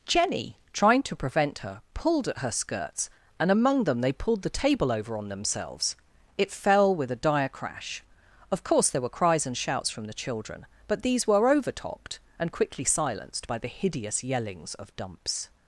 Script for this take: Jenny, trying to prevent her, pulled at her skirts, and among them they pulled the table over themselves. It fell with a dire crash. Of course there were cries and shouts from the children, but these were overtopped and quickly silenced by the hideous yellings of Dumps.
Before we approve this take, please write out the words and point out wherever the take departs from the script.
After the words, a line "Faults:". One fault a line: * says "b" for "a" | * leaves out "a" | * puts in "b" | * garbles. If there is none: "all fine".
Jenny, trying to prevent her, pulled at her skirts, and among them they pulled the table over on themselves. It fell with a dire crash. Of course there were cries and shouts from the children, but these were overtopped and quickly silenced by the hideous yellings of Dumps.
Faults:
* puts in "on"